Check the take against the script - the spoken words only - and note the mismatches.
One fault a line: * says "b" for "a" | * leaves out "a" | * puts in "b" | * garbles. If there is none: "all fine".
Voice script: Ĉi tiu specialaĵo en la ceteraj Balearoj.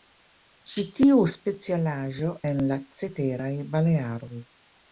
all fine